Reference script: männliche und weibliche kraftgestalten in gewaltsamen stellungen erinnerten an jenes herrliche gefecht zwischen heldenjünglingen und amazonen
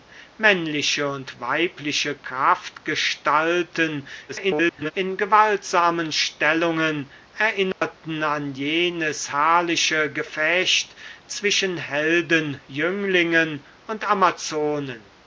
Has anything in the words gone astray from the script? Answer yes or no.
yes